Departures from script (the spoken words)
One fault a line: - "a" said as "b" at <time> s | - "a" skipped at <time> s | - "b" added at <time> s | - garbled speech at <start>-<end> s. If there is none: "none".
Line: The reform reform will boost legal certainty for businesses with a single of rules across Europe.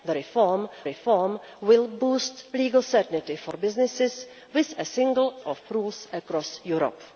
none